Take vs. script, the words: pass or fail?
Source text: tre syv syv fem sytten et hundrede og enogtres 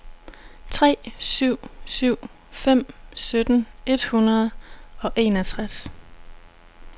pass